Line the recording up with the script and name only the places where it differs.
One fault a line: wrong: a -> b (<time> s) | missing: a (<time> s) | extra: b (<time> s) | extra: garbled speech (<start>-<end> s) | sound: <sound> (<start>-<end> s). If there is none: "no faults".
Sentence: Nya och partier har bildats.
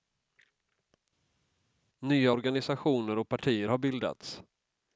extra: organisationer (2.3 s)